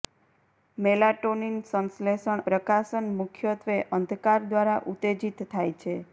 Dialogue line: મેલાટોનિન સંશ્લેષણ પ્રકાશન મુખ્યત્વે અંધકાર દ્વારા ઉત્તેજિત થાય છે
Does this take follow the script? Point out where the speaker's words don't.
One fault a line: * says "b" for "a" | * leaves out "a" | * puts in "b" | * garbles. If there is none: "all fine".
all fine